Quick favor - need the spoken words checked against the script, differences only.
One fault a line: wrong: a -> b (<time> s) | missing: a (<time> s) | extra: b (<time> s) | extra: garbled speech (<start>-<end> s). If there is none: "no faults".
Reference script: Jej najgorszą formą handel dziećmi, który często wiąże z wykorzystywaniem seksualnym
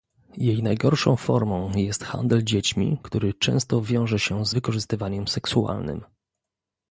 extra: jest (1.8 s)
extra: się (4.2 s)